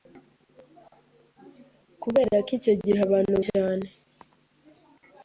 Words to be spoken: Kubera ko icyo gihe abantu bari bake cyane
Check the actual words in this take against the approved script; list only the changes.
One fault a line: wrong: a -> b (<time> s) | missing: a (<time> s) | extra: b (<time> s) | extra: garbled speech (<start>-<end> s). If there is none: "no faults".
missing: bari bake (3.4 s)